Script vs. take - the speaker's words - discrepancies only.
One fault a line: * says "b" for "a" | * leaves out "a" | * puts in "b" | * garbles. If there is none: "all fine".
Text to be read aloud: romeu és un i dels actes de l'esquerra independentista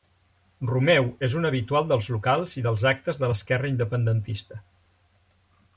* puts in "habitual dels locals"